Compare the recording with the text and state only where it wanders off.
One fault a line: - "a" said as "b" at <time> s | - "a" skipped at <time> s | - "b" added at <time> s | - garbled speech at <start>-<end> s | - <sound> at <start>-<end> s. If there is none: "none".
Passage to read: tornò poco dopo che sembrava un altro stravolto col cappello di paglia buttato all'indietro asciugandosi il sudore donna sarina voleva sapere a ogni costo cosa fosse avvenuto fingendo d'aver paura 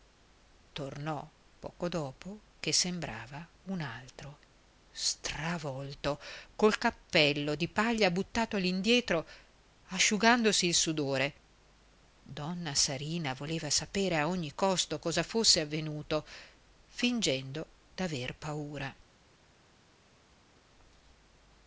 none